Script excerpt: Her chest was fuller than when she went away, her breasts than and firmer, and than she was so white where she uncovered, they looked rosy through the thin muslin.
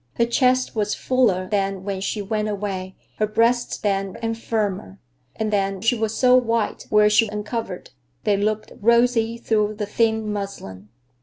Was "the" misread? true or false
false